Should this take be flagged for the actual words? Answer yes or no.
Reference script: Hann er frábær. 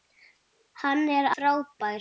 no